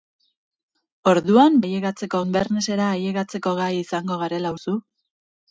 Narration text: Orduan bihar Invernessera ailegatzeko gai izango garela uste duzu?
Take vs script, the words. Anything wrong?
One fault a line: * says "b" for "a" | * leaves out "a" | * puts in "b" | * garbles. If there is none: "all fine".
* says "ailegatzeko" for "bihar"
* leaves out "uste"